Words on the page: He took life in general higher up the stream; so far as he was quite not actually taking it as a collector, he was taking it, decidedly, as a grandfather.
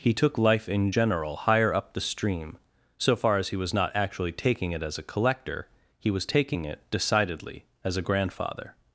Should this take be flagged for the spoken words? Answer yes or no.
yes